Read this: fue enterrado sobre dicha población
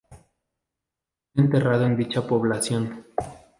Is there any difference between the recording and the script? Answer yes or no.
yes